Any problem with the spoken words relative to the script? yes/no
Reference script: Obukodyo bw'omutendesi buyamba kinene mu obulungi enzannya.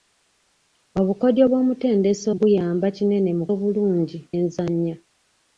no